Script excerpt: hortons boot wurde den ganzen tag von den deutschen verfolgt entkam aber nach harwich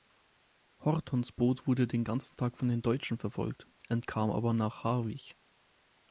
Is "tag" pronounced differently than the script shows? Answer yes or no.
no